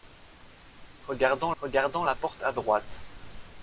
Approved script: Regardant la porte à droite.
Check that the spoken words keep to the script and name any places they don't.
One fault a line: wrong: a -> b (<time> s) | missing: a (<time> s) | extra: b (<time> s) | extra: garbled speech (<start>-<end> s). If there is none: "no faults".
extra: regardant (1.6 s)